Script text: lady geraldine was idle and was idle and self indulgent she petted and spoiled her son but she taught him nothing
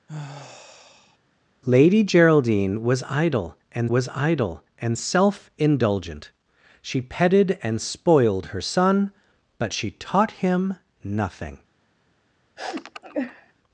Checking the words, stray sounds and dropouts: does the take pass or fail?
fail